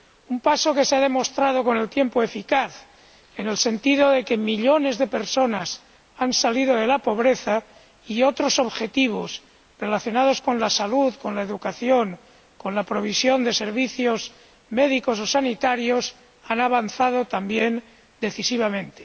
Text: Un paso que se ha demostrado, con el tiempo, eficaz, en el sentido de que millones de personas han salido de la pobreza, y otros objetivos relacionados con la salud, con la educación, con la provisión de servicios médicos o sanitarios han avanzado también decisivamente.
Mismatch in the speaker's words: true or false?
false